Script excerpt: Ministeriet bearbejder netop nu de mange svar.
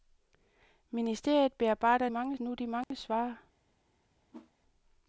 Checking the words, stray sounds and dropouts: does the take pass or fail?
fail